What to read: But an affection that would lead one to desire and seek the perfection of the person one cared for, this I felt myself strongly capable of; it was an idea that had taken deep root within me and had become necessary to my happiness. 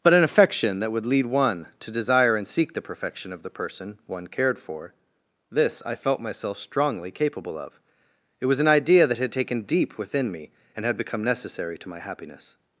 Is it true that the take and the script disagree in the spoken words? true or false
true